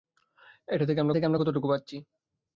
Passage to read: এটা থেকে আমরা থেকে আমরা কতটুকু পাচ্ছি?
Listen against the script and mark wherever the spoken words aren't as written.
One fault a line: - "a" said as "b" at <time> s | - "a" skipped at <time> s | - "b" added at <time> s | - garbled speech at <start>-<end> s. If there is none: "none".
none